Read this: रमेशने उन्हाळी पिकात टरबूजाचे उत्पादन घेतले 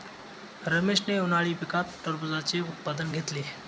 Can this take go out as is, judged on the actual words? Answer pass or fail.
pass